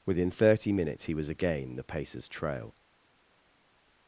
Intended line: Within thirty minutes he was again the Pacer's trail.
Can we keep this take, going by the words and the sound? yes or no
yes